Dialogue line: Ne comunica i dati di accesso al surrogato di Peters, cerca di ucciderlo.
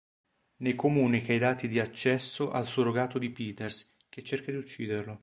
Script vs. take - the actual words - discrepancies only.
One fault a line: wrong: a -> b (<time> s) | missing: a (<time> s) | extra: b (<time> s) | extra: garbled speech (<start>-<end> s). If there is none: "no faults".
extra: che (4.1 s)